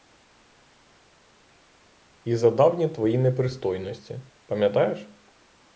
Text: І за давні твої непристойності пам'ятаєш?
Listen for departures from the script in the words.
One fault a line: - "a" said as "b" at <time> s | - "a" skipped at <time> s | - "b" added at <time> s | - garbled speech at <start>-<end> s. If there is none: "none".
none